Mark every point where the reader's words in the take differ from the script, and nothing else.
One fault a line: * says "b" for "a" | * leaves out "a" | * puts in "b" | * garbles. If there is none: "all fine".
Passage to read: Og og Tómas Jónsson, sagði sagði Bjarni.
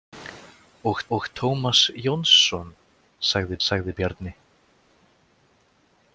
all fine